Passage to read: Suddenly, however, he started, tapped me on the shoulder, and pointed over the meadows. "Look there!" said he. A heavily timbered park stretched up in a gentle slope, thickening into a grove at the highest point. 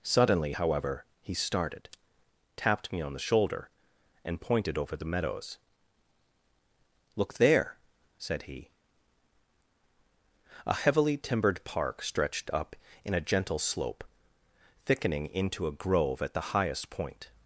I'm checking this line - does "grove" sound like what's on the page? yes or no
yes